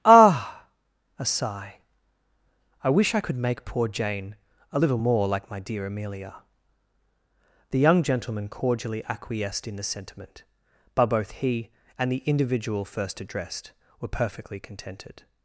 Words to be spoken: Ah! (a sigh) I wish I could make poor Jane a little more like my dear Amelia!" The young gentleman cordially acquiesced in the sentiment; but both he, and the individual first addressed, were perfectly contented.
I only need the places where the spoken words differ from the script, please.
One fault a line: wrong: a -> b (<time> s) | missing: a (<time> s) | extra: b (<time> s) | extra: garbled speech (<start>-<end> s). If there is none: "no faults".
no faults